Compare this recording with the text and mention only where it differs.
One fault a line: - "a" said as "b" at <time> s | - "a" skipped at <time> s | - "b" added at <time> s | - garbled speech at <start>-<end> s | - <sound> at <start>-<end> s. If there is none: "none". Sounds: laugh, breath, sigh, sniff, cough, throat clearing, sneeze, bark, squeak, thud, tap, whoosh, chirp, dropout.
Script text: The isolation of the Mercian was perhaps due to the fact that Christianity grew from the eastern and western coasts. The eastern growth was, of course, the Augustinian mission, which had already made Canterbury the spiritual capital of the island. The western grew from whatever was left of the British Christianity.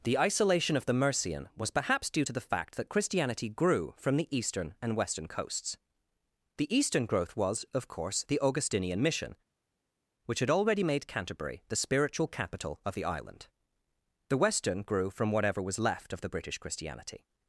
none